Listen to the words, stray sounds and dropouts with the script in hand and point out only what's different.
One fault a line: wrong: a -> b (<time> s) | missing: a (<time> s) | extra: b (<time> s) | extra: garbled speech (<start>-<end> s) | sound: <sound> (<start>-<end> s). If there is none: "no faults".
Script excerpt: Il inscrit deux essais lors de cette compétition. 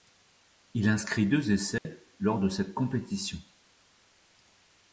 sound: dropout (1.8-1.8 s)